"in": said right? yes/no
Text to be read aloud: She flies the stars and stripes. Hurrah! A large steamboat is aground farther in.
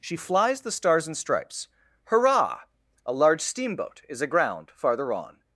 no